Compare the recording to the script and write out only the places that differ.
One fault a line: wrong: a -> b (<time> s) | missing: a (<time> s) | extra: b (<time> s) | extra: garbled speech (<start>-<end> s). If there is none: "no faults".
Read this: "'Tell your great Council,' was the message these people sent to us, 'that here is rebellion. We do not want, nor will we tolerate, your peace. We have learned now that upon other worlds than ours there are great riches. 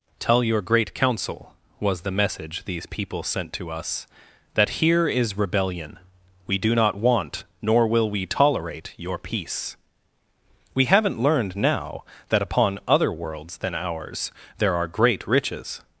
wrong: have -> haven't (10.8 s)